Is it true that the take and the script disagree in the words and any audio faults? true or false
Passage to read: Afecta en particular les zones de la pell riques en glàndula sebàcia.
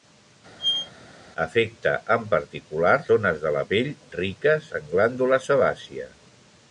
true